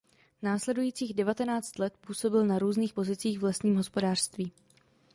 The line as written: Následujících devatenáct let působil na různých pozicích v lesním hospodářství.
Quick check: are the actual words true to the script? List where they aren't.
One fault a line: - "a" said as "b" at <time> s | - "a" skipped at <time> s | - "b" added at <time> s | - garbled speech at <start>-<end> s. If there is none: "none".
none